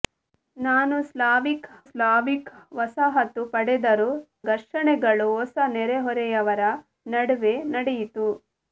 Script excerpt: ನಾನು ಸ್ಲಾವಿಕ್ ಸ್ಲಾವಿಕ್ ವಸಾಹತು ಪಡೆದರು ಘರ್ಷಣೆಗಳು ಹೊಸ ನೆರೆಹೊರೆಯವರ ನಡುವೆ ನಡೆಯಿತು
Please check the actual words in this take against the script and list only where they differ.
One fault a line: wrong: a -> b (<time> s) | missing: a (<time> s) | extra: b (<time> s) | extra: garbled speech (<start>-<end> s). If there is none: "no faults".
no faults